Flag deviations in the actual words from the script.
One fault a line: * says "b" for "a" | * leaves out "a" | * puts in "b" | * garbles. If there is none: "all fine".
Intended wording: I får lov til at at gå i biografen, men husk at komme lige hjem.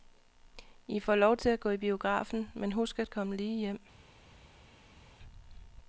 * leaves out "at"